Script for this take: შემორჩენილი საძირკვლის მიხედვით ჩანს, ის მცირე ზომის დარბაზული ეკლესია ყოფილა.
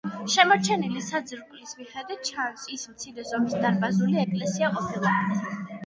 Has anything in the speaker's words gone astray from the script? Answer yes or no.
no